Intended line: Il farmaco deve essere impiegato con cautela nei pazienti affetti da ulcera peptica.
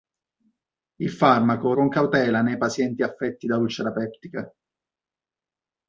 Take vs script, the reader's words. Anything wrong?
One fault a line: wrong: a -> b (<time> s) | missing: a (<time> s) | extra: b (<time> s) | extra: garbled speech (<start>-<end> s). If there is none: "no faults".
missing: deve essere impiegato (1.8 s)